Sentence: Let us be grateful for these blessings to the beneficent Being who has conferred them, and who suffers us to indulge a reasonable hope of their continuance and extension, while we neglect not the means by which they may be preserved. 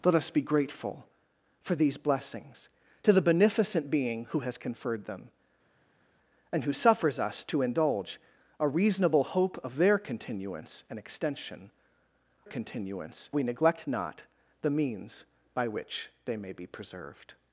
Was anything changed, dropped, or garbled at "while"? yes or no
yes